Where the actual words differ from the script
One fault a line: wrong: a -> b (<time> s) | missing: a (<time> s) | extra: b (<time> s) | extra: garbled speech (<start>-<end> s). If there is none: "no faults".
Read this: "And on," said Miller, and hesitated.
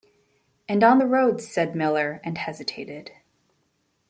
extra: the roads (0.9 s)